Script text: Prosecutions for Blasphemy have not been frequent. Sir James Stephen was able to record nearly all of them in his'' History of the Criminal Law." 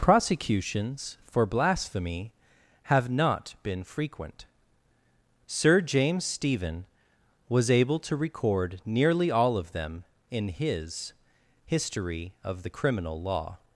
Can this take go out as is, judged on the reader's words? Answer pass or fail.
pass